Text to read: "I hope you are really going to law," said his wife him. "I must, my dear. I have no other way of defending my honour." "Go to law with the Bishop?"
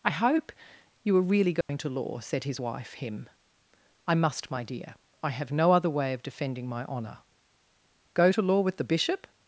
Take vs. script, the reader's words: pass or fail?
pass